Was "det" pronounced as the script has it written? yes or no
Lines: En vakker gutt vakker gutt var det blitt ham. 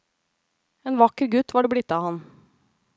yes